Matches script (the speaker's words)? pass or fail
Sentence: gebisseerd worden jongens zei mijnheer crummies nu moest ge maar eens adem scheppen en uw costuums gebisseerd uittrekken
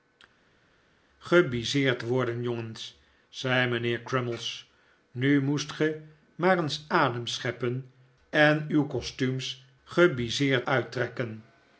pass